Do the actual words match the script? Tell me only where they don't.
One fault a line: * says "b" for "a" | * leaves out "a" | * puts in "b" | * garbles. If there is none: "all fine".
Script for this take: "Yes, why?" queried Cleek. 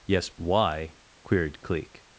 all fine